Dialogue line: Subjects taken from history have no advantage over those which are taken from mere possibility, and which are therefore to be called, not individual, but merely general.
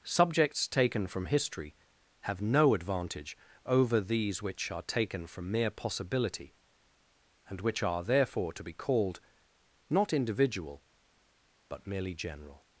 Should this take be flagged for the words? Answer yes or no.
yes